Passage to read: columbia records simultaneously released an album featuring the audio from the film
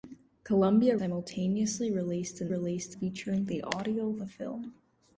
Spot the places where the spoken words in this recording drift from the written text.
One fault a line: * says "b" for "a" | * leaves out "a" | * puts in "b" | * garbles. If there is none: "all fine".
* leaves out "records"
* says "released" for "album"
* leaves out "from"